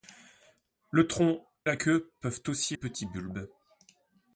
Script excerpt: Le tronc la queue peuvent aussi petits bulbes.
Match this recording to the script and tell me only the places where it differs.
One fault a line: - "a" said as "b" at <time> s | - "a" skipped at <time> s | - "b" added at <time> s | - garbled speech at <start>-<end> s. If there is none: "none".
none